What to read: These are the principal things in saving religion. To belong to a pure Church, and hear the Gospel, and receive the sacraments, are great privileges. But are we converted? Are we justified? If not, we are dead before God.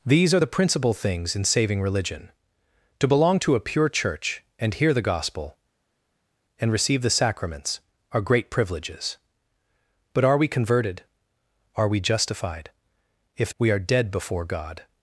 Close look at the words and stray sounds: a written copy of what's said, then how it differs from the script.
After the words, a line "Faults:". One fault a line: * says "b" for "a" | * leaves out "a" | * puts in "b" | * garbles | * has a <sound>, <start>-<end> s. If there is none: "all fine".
These are the principal things in saving religion. To belong to a pure Church, and hear the Gospel, and receive the sacraments, are great privileges. But are we converted? Are we justified? If we are dead before God.
Faults:
* leaves out "not"